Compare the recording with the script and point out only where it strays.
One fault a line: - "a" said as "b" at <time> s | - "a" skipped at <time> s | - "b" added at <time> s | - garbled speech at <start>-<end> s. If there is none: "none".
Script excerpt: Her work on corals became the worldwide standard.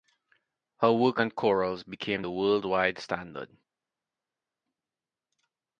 none